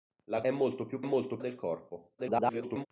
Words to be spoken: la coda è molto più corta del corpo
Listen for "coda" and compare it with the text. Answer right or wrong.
wrong